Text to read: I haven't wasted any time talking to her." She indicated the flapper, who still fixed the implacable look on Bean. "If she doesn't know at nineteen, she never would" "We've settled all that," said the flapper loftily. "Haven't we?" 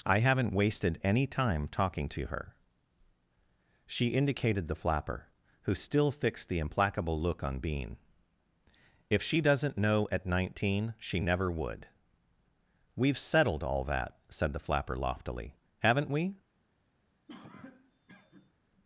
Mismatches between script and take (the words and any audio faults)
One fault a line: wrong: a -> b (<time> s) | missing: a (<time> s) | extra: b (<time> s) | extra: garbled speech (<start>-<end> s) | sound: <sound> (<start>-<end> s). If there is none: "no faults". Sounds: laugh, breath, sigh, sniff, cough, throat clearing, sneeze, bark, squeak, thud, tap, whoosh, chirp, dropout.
sound: cough (17.3-18.5 s)